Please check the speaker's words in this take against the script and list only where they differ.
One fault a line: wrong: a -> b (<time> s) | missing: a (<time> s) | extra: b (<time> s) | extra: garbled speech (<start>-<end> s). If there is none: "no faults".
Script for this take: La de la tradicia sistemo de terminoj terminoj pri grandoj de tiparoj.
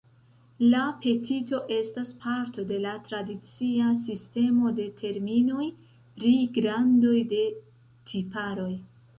extra: petito estas parto (1.0 s)
missing: terminoj (5.7 s)